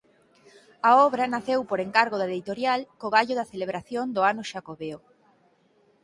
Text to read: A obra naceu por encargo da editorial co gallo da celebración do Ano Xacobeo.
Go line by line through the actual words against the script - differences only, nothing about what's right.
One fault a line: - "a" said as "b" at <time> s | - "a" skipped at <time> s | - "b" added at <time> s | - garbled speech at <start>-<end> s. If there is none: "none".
none